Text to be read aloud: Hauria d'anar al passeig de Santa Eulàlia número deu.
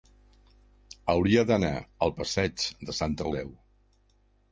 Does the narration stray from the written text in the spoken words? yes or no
yes